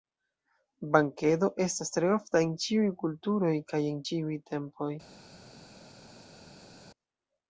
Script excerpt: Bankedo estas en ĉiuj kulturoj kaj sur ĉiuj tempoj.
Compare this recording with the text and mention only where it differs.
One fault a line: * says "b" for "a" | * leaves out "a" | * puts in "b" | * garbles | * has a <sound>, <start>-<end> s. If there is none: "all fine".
* puts in "tre ofta"
* says "en" for "sur"